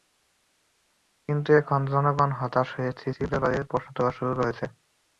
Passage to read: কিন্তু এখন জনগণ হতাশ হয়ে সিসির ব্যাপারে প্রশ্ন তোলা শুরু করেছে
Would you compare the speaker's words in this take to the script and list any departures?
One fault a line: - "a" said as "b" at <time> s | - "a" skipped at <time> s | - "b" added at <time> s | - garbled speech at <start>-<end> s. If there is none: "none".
none